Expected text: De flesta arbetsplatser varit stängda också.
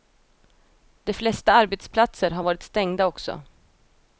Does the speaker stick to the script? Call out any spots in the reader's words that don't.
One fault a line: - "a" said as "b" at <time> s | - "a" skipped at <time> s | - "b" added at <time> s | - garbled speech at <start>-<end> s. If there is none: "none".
- "har" added at 2.3 s